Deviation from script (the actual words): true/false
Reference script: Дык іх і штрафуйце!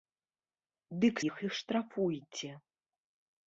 false